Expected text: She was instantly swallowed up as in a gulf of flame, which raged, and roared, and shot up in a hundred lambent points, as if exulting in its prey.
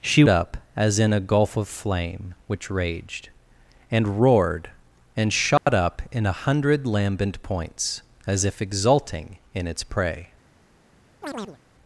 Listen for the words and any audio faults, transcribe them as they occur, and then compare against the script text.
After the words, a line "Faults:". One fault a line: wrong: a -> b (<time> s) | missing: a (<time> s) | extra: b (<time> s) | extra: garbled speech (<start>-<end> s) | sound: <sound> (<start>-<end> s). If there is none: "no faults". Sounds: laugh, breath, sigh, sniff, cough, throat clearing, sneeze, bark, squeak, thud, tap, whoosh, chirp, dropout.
She up as in a gulf of flame, which raged, and roared, and shot up in a hundred lambent points, as if exulting in its prey.
Faults:
missing: was instantly swallowed (0.2 s)
sound: dropout (5.6-5.7 s)
sound: chirp (11.2-11.6 s)